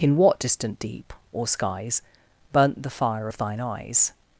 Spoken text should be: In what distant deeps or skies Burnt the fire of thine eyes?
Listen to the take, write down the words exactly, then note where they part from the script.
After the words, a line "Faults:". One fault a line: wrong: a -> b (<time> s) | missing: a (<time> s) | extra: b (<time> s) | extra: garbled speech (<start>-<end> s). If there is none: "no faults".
In what distant deep or skies Burnt the fire of thine eyes?
Faults:
wrong: deeps -> deep (0.8 s)